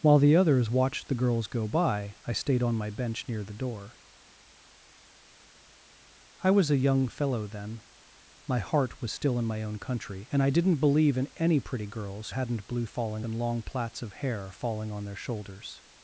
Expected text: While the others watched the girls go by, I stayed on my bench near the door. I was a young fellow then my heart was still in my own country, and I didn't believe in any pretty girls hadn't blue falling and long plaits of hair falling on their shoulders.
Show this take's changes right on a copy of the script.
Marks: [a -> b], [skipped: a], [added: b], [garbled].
While the others watched the girls go by, I stayed on my bench near the door. I was a young fellow then my heart was still in my own country, and I didn't believe in any pretty girls hadn't blue falling and long plaits of hair falling on their shoulders.